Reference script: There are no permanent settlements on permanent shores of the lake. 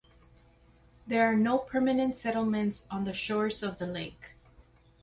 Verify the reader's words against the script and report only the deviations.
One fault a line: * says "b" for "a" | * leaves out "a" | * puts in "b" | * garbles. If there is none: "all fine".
* says "the" for "permanent"